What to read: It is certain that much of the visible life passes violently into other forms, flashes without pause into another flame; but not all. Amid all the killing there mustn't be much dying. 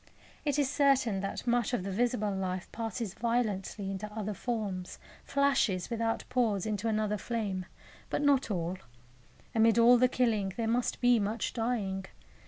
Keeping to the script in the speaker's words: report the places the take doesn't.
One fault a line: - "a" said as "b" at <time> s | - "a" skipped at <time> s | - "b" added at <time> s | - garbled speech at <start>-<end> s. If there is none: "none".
- "mustn't" said as "must" at 10.7 s